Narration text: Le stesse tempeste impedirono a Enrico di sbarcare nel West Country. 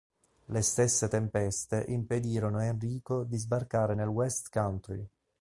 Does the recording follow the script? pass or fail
pass